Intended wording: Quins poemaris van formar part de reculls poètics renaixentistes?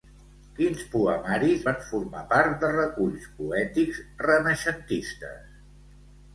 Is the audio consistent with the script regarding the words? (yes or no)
yes